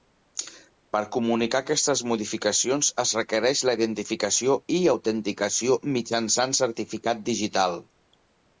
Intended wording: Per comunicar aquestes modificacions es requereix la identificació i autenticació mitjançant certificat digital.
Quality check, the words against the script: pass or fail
pass